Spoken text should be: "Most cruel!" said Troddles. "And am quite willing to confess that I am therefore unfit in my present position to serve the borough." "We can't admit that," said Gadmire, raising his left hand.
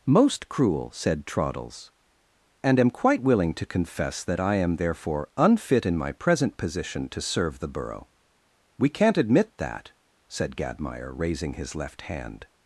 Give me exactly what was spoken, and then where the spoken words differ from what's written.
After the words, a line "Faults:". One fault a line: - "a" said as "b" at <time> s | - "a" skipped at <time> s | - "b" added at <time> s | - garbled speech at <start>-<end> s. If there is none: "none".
"Most cruel!" said Troddles. "And am quite willing to confess that I am therefore unfit in my present position to serve the borough." "We can't admit that," said Gadmire, raising his left hand.
Faults:
none